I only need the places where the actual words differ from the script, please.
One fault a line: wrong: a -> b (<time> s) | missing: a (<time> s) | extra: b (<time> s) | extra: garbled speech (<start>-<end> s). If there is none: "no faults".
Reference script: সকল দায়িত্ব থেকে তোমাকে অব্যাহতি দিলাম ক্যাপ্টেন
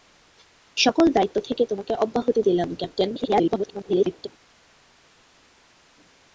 extra: garbled speech (3.1-4.3 s)